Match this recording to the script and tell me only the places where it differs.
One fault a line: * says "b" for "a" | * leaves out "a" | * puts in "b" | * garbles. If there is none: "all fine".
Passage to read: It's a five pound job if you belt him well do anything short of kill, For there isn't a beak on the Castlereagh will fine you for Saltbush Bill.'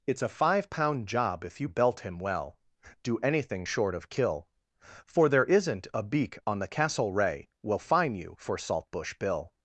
all fine